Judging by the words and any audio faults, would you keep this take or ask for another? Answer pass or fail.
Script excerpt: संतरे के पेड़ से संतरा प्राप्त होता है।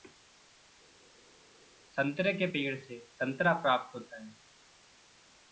pass